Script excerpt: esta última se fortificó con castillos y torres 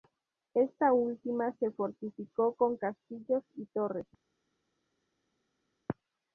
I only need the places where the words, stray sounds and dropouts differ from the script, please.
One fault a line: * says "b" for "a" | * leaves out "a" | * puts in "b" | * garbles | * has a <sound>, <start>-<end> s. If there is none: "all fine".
all fine